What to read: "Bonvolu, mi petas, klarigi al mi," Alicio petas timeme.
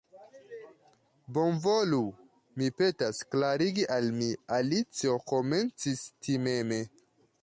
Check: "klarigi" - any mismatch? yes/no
no